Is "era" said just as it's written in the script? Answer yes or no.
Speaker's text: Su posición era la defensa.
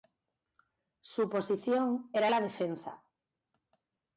yes